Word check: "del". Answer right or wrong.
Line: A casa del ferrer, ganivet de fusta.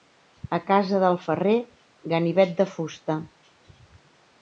right